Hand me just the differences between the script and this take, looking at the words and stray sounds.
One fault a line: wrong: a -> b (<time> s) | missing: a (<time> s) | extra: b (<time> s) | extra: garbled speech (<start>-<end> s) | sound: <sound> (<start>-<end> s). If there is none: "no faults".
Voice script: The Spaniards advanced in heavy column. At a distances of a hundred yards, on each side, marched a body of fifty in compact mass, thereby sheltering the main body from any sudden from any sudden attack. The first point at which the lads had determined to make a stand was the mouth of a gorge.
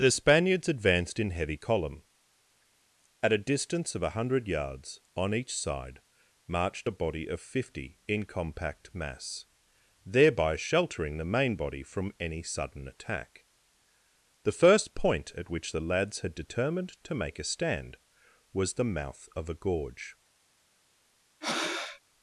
wrong: distances -> distance (3.5 s)
missing: from any sudden (12.9 s)
sound: breath (21.4-22.0 s)